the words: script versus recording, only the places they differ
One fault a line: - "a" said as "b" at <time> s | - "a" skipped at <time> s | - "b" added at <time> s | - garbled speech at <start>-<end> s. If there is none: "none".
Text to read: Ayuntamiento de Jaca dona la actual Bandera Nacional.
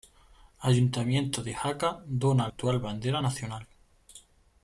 - "la" skipped at 2.5 s